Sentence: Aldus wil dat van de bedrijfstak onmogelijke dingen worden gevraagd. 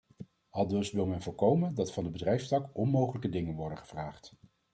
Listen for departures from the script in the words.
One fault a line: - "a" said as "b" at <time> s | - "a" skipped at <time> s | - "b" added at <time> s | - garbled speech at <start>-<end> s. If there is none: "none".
- "men voorkomen" added at 1.0 s